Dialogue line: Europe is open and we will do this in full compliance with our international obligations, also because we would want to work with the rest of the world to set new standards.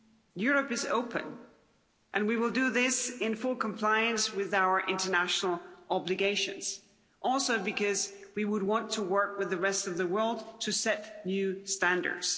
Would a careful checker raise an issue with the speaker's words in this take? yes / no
no